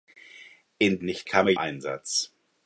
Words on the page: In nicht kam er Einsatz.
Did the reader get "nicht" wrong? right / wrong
right